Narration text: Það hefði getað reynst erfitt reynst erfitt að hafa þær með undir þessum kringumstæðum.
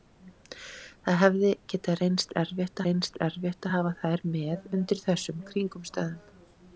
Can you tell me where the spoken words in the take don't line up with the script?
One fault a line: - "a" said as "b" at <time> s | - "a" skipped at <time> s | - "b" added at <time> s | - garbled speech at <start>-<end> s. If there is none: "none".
none